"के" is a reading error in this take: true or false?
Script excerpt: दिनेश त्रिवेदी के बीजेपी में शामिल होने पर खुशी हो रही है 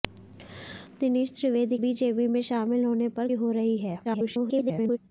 true